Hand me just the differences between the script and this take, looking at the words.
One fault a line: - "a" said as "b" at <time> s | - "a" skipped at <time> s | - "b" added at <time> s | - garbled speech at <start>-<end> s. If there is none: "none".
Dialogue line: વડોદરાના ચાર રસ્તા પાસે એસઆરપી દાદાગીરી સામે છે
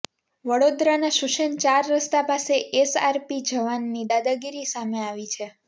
- "શુસેન" added at 1.2 s
- "જવાનની" added at 3.5 s
- "આવી" added at 5.1 s